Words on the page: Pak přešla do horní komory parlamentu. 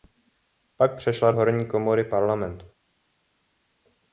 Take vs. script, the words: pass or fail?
fail